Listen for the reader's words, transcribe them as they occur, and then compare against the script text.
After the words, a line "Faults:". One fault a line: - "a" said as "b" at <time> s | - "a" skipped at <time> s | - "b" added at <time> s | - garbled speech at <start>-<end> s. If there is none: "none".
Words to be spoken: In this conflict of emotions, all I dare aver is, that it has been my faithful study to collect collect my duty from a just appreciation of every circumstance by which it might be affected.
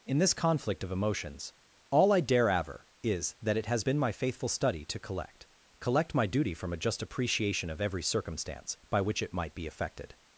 In this conflict of emotions, all I dare aver is, that it has been my faithful study to collect collect my duty from a just appreciation of every circumstance by which it might be affected.
Faults:
none